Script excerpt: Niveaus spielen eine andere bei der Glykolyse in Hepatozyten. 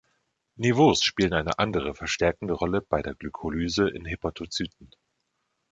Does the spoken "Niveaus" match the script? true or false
true